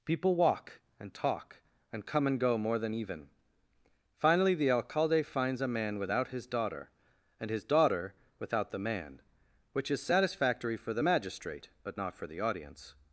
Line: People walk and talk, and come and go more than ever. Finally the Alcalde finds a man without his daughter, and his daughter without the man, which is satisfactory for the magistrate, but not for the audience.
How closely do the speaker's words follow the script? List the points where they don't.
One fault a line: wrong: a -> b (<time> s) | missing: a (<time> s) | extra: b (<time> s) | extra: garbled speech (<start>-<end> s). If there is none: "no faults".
wrong: ever -> even (2.9 s)